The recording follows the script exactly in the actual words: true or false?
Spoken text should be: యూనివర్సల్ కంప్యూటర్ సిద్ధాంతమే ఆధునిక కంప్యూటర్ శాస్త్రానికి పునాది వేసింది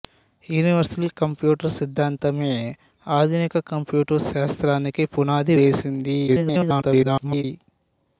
false